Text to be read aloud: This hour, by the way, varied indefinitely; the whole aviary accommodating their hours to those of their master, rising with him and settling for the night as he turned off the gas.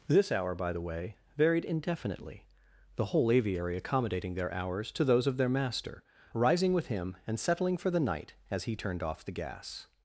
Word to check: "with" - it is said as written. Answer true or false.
true